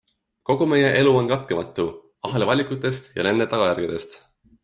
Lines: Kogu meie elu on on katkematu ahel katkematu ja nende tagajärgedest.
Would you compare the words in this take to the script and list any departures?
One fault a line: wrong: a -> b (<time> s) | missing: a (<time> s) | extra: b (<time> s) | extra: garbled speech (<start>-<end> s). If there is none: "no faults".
missing: on (1.3 s)
wrong: katkematu -> valikutest (2.5 s)